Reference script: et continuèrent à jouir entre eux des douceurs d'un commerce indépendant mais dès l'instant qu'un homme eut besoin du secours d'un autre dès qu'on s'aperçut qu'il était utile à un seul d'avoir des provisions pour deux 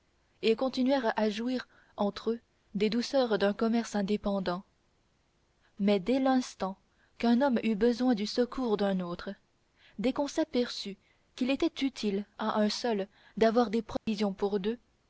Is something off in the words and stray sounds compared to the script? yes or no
yes